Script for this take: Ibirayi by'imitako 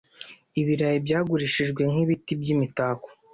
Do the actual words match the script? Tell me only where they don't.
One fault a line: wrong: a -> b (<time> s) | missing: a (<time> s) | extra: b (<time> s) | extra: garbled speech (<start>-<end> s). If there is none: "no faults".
extra: byagurishijwe nk'ibiti (1.1 s)